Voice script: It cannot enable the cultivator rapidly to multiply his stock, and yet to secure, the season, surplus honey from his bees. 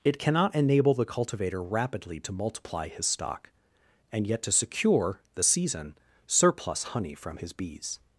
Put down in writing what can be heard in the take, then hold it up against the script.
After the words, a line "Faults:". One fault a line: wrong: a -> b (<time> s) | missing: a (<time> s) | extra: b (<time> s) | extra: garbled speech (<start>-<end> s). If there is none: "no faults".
It cannot enable the cultivator rapidly to multiply his stock, and yet to secure, the season, surplus honey from his bees.
Faults:
no faults